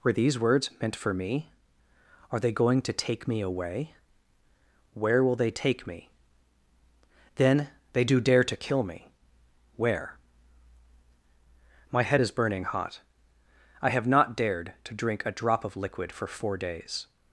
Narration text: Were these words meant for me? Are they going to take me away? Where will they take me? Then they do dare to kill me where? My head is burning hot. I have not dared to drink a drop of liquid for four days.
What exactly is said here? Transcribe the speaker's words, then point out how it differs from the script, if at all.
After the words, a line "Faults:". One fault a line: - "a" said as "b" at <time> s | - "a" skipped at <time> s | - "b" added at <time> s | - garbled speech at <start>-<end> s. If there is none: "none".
Were these words meant for me? Are they going to take me away? Where will they take me? Then they do dare to kill me where? My head is burning hot. I have not dared to drink a drop of liquid for four days.
Faults:
none